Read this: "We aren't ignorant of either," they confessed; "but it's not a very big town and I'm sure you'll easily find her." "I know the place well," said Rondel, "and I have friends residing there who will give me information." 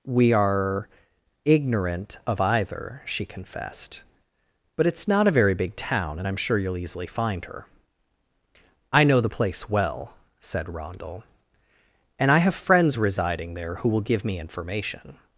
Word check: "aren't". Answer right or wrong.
wrong